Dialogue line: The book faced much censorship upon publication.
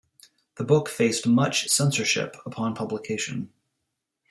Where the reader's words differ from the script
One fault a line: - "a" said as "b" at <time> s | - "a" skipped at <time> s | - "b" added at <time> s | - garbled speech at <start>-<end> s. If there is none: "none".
none